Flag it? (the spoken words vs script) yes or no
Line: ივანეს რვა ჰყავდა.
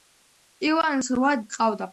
no